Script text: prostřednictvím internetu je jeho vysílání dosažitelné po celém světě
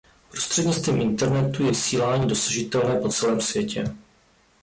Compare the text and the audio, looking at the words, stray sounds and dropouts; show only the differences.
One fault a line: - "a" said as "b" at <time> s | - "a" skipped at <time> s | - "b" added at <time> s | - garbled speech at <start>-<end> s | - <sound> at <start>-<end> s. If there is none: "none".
- "jeho" skipped at 1.7 s